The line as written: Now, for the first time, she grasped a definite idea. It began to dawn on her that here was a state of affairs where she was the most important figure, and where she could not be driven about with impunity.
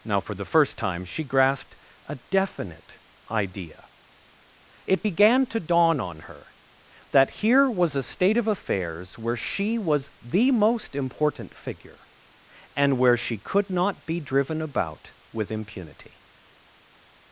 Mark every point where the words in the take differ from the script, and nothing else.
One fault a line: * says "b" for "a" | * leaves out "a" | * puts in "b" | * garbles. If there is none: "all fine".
all fine